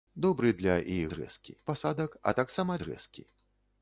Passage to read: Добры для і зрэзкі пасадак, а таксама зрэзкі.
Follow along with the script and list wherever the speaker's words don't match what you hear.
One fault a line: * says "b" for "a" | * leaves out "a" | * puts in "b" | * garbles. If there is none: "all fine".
all fine